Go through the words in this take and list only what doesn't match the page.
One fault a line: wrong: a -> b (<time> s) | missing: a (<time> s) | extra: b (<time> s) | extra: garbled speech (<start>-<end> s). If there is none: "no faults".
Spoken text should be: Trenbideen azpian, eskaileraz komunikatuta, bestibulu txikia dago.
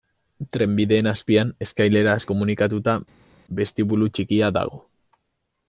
no faults